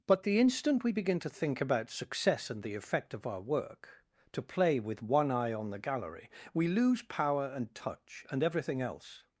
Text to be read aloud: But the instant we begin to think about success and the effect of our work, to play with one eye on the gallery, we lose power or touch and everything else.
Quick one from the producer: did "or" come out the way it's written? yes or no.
no